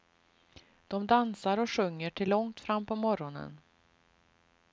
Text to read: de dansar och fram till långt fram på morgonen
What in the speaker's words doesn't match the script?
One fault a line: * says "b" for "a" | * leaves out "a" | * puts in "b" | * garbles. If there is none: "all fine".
* says "sjunger" for "fram"